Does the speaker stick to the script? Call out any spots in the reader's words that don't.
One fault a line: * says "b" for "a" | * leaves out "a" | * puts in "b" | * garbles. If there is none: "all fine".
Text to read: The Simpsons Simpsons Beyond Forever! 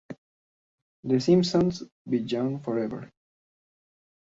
* leaves out "Simpsons"